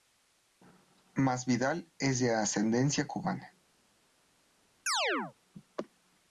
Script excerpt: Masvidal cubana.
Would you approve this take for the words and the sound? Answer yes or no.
no